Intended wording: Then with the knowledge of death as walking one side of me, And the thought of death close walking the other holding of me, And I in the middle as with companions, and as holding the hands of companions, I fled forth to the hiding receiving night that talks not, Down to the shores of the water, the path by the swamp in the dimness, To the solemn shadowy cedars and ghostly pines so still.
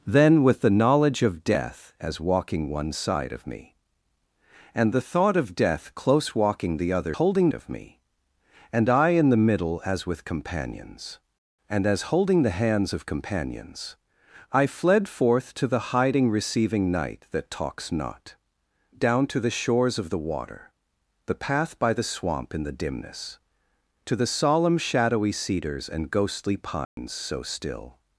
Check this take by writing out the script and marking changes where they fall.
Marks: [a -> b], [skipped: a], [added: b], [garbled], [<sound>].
Then with the knowledge of death as walking one side of me, And the thought of death close walking the other holding of me, And I in the middle as with companions, and as holding the hands of companions, I fled forth to the hiding receiving night that talks not, Down to the shores of the water, the path by the swamp in the dimness, To the solemn shadowy cedars and ghostly pines [dropout] so still.